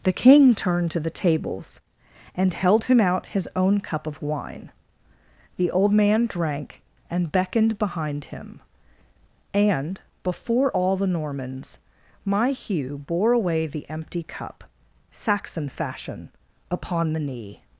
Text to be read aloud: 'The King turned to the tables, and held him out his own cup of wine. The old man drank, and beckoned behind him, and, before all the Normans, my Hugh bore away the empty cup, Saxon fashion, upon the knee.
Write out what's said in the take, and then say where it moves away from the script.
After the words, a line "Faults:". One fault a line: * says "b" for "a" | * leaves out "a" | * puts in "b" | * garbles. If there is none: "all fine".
'The King turned to the tables, and held him out his own cup of wine. The old man drank, and beckoned behind him, and, before all the Normans, my Hugh bore away the empty cup, Saxon fashion, upon the knee.
Faults:
all fine